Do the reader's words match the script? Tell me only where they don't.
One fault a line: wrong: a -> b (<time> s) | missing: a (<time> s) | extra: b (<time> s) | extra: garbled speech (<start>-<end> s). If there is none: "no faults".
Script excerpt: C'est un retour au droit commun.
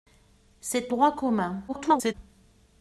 missing: un retour au (0.9 s)
extra: garbled speech (1.7-2.1 s)